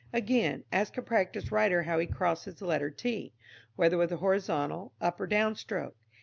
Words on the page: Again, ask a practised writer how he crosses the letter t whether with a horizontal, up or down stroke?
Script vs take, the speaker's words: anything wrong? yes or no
no